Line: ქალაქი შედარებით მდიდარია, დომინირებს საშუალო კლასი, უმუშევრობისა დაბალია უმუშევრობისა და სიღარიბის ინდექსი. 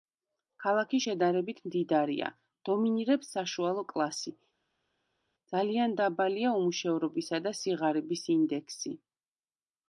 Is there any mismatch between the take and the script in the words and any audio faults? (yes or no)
yes